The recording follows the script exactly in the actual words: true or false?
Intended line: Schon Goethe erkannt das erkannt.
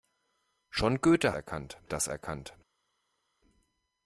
true